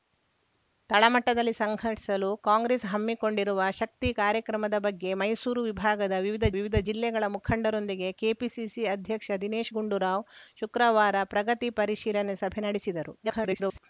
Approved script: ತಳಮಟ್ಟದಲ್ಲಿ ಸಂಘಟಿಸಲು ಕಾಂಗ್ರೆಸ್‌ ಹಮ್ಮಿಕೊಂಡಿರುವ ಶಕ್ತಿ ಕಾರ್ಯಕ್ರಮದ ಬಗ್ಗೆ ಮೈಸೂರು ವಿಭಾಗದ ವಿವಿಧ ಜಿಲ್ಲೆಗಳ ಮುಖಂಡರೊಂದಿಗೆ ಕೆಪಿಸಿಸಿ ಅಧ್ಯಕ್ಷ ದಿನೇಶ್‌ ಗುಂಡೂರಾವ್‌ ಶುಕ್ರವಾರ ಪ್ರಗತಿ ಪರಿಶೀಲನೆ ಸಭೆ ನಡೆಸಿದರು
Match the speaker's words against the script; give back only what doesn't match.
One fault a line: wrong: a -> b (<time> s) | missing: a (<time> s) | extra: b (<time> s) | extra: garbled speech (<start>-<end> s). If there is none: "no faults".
extra: ವಿವಿಧ (6.6 s)
extra: garbled speech (13.2-13.8 s)